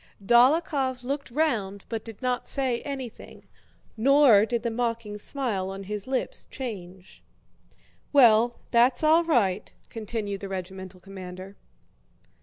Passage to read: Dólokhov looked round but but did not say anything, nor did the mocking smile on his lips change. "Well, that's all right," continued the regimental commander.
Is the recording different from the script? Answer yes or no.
yes